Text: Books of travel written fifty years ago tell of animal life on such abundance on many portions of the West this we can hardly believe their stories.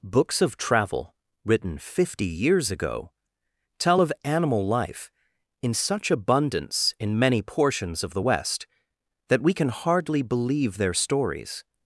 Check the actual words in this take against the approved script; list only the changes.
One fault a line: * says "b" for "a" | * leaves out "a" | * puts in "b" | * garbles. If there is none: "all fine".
* says "in" for "on"
* says "in" for "on"
* says "that" for "this"